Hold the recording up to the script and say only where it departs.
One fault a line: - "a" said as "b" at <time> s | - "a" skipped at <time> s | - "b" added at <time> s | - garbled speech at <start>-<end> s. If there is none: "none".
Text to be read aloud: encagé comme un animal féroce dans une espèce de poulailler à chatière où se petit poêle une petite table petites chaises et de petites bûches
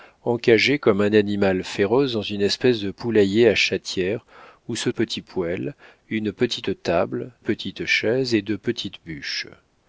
none